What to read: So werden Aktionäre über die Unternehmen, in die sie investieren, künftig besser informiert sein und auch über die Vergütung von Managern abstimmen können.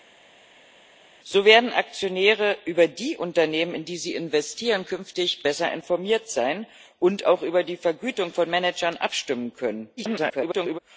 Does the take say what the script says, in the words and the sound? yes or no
no